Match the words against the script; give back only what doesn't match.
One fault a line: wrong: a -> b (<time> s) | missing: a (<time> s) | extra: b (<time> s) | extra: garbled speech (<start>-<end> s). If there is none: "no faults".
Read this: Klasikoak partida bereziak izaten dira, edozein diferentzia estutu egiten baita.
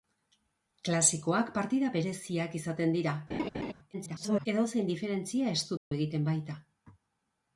extra: garbled speech (3.9-4.5 s)